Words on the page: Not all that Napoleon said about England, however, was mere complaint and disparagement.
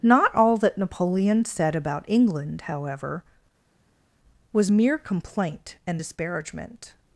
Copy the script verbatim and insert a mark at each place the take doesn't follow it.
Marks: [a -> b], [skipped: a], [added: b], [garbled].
Not all that Napoleon said about England, however, was mere complaint and disparagement.